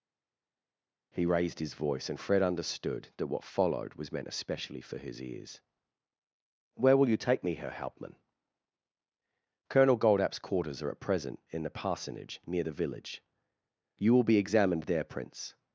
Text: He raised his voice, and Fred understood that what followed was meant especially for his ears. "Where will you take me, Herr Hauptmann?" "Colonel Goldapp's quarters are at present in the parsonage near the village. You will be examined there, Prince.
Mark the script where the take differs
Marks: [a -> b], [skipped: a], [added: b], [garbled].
He raised his voice, and Fred understood that what followed was meant especially for his ears. "Where will you take me, Herr Hauptmann?" "Colonel Goldapp's quarters are at present in the parsonage near the village. You will be examined there, Prince.